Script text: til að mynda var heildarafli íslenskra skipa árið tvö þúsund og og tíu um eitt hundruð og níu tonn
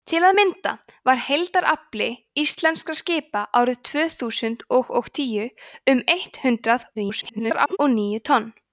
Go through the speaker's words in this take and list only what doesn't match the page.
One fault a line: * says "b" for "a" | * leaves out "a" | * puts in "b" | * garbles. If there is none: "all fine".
* garbles